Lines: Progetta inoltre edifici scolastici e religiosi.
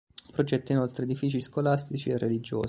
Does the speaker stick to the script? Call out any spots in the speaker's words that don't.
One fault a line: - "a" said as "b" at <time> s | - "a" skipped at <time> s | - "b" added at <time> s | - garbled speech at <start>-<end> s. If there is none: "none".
none